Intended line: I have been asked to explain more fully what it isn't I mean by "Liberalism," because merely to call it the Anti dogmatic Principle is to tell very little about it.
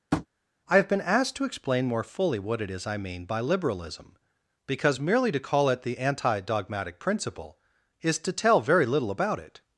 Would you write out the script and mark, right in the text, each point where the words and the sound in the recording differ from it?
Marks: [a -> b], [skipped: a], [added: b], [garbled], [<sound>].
[tap] I have been asked to explain more fully what it [isn't -> is] I mean by "Liberalism," because merely to call it the Anti dogmatic Principle is to tell very little about it.